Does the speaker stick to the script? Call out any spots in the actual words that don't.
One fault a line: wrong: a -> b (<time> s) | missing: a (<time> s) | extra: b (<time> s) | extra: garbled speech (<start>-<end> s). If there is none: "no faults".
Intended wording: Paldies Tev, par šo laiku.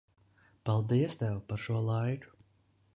no faults